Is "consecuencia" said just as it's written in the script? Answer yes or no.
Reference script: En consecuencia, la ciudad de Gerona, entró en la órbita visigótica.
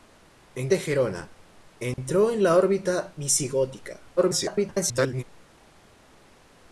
no